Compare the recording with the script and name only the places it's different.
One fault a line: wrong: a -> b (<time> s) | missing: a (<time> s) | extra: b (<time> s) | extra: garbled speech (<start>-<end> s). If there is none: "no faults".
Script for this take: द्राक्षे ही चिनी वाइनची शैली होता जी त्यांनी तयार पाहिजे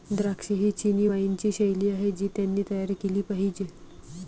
wrong: होता -> आहे (1.9 s)
extra: केली (3.0 s)